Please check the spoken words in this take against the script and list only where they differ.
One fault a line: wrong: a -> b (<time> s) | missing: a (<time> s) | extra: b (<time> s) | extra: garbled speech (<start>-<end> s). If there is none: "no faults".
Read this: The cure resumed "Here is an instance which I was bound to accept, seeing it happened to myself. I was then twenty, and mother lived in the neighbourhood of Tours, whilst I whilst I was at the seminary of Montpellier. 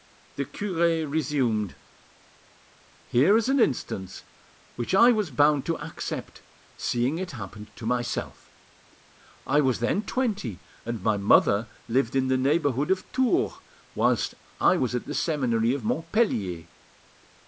extra: my (11.0 s)
missing: whilst I (14.8 s)